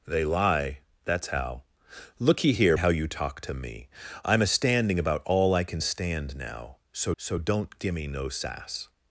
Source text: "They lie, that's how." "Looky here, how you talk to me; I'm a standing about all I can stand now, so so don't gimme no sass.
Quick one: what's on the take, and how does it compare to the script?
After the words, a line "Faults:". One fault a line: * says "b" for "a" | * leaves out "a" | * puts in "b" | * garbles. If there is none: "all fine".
"They lie, that's how." "Looky here, how you talk to me; I'm a standing about all I can stand now, so so don't gimme no sass.
Faults:
all fine